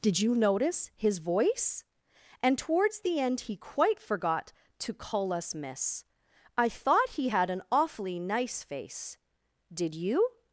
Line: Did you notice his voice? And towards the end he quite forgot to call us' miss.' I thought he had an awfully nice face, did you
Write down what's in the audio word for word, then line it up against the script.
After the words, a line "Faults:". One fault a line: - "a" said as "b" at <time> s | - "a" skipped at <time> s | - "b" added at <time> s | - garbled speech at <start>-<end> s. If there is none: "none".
Did you notice his voice? And towards the end he quite forgot to call us' miss.' I thought he had an awfully nice face, did you
Faults:
none